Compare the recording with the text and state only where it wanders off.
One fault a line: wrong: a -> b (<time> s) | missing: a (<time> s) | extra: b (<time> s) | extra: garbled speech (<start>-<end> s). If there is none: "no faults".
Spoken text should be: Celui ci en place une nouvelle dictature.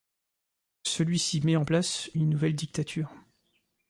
extra: met (1.4 s)